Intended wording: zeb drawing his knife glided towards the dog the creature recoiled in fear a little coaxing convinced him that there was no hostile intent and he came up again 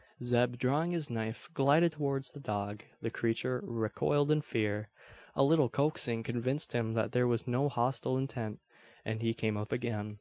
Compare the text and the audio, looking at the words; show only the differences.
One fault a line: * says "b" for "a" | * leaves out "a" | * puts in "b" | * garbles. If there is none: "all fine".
all fine